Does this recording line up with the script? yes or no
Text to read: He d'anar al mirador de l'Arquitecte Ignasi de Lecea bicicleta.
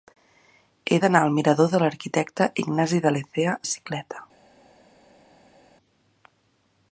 yes